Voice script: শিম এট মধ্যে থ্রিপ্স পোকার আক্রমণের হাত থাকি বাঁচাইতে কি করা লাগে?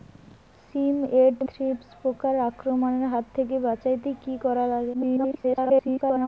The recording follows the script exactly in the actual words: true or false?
false